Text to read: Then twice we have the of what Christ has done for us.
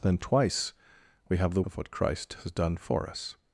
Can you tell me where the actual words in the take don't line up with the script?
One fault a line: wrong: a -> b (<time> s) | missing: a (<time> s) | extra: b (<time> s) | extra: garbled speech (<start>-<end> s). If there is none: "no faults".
no faults